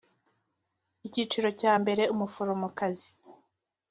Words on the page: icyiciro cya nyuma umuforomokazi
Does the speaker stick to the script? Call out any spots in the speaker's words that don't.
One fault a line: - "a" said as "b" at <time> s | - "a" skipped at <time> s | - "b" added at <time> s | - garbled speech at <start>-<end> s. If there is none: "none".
- "nyuma" said as "mbere" at 1.8 s